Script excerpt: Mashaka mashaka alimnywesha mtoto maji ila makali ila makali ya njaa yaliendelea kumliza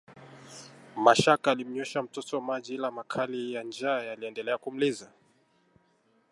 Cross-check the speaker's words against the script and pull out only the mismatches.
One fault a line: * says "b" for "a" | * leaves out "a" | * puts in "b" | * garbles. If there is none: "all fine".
* leaves out "mashaka"
* leaves out "ila makali"